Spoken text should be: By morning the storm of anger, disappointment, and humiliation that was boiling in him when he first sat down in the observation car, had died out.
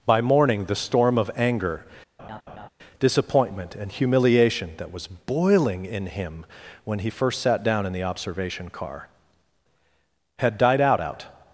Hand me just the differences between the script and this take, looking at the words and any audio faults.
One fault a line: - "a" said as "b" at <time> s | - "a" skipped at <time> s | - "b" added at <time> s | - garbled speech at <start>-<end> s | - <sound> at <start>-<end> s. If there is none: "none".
- laugh at 2.2-2.7 s
- "out" added at 11.0 s